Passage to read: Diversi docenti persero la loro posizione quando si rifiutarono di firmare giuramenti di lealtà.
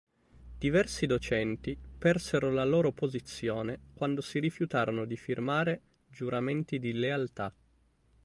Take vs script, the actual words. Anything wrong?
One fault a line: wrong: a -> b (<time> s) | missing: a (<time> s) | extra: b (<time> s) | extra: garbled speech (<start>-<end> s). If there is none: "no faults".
no faults